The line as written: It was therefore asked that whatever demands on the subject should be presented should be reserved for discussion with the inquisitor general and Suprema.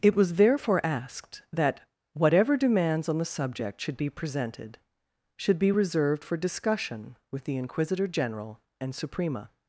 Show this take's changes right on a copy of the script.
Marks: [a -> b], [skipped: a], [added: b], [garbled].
It was therefore asked that whatever demands on the subject should be presented should be reserved for discussion with the inquisitor general and Suprema.